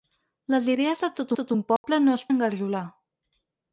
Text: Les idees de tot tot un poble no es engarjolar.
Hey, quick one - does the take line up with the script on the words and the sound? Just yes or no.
no